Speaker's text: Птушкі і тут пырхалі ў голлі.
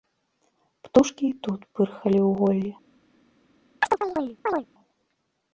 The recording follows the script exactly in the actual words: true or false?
true